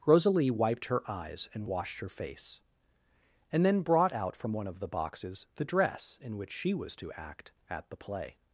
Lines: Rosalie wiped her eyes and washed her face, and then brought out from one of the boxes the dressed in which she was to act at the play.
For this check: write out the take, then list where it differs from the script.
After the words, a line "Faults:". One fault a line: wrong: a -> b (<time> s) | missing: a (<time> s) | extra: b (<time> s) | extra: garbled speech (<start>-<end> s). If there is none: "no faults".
Rosalie wiped her eyes and washed her face, and then brought out from one of the boxes the dress in which she was to act at the play.
Faults:
wrong: dressed -> dress (5.7 s)